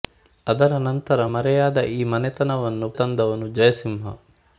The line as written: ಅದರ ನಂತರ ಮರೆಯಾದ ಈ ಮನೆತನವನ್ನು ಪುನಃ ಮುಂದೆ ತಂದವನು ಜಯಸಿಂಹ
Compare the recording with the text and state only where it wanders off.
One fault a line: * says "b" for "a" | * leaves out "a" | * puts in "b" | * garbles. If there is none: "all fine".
* leaves out "ಪುನಃ ಮುಂದೆ"